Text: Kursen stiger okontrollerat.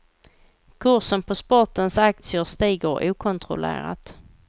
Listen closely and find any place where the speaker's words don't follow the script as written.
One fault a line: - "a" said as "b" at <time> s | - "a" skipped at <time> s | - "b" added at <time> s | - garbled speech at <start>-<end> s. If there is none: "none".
- "på sportens aktier" added at 1.2 s